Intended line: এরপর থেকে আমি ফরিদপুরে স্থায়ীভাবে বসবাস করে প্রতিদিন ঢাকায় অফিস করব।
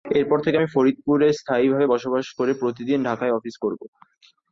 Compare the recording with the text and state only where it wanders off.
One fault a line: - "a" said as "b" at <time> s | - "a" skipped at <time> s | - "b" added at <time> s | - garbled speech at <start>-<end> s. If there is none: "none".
none